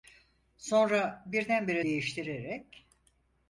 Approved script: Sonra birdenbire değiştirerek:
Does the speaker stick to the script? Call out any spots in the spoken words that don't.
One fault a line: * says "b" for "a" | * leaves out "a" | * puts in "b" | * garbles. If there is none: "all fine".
all fine